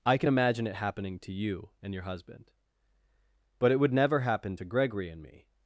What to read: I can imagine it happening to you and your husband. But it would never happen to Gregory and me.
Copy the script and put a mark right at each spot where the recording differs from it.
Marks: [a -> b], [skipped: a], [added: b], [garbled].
I can imagine it happening to you and your husband. But it would never happen to Gregory and me.